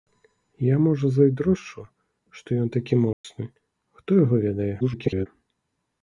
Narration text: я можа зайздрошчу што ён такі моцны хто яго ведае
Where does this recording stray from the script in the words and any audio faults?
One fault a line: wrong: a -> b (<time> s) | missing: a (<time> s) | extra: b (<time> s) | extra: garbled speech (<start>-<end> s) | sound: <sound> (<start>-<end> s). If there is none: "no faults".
sound: dropout (3.1-3.2 s)
extra: garbled speech (4.8-5.3 s)